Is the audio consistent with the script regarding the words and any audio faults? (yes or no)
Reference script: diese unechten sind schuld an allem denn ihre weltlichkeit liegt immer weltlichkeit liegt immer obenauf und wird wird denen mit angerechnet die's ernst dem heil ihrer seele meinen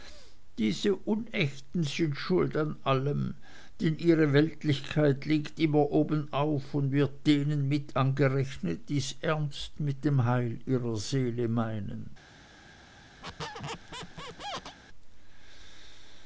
no